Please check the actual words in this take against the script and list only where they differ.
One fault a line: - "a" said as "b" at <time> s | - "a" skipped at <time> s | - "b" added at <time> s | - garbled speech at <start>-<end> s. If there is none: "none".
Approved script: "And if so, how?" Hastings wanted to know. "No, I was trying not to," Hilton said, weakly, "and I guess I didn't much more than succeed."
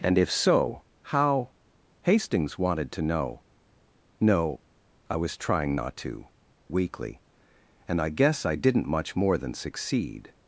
- "Hilton said" skipped at 6.3 s